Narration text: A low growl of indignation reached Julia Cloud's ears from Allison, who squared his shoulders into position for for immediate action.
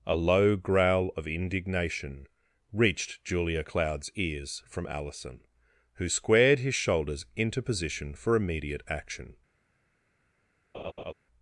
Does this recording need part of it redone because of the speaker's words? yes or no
yes